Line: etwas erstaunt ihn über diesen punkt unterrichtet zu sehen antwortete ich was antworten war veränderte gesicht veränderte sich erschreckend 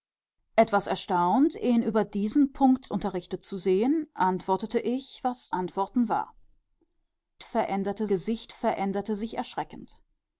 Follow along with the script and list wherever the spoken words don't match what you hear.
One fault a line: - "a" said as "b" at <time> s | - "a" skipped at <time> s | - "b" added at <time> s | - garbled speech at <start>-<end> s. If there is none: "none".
none